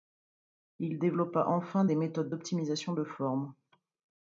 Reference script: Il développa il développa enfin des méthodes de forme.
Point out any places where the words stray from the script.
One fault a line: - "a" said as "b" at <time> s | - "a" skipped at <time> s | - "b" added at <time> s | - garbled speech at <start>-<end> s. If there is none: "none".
- "il développa" skipped at 1.4 s
- "d'optimisation" added at 2.3 s